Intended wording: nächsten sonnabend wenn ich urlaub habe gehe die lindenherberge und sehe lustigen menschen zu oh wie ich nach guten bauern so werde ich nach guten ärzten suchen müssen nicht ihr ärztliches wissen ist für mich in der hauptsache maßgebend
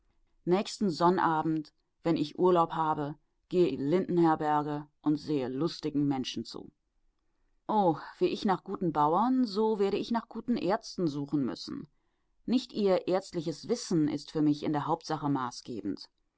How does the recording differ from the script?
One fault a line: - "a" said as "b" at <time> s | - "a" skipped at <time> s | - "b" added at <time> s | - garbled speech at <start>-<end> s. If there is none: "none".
none